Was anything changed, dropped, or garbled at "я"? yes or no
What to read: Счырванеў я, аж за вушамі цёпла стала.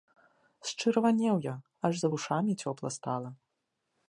no